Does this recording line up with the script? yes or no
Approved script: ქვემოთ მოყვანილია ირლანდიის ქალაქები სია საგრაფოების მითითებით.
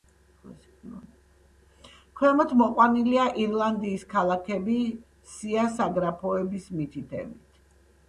yes